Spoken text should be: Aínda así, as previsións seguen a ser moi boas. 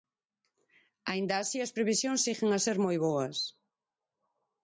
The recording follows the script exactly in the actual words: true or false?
true